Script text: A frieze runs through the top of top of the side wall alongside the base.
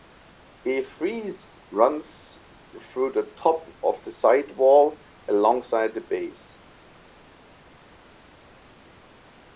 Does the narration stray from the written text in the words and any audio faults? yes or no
yes